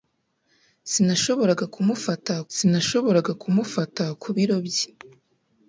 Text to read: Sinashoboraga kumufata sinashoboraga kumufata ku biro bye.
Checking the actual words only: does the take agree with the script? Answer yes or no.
yes